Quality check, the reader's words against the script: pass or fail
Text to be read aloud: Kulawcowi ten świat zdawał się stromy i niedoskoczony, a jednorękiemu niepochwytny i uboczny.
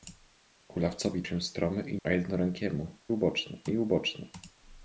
fail